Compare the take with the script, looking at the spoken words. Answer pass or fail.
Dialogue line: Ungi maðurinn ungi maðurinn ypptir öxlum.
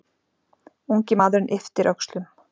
fail